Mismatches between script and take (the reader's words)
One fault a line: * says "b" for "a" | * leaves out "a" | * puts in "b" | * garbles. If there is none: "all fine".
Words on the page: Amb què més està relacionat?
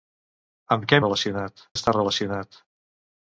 * says "relacionat" for "més"